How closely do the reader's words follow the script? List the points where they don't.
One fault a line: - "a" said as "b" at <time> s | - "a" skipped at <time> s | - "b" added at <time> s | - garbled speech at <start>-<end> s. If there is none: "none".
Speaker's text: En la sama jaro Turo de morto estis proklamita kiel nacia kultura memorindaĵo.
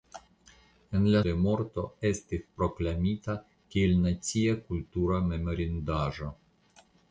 - "sama jaro Turo" skipped at 1.2 s